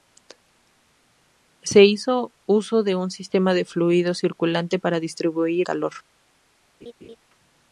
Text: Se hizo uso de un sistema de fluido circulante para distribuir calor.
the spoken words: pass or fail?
pass